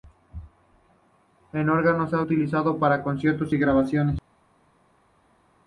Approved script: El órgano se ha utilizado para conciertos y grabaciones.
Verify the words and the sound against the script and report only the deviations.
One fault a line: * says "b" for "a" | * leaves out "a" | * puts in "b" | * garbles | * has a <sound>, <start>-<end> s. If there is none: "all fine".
all fine